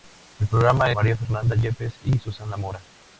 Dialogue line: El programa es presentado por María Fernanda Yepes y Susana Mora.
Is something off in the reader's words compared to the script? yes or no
yes